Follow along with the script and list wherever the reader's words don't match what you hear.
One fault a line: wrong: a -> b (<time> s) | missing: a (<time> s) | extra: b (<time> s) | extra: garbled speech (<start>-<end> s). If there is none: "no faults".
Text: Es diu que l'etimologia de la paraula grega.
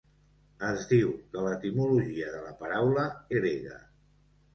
no faults